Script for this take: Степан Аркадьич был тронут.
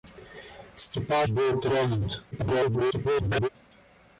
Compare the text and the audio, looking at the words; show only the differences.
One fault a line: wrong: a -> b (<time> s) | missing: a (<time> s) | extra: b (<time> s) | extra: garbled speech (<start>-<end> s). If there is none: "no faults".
missing: Аркадьич (1.3 s)
extra: garbled speech (2.3-3.5 s)